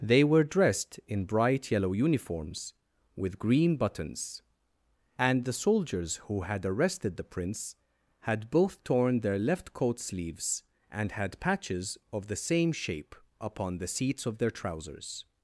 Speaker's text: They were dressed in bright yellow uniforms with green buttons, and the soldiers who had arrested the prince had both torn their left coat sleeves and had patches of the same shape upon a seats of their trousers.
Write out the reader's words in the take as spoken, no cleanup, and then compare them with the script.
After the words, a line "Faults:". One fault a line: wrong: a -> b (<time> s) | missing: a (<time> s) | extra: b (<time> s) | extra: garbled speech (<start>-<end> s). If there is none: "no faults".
They were dressed in bright yellow uniforms with green buttons, and the soldiers who had arrested the prince had both torn their left coat sleeves and had patches of the same shape upon the seats of their trousers.
Faults:
wrong: a -> the (13.8 s)